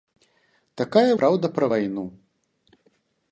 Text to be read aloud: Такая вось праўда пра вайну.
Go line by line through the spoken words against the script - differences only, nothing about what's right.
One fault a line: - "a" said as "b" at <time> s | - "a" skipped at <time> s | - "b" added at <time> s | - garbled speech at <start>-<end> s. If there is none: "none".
- "вось" skipped at 1.1 s